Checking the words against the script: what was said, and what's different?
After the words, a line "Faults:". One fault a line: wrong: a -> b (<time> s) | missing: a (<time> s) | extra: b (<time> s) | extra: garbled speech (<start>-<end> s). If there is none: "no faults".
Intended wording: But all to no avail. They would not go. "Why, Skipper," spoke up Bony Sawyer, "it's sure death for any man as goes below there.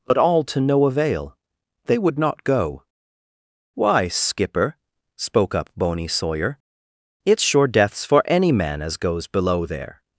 But all to no avail. They would not go. "Why, Skipper," spoke up Bony Sawyer, "it's sure deaths for any man as goes below there.
Faults:
wrong: death -> deaths (7.7 s)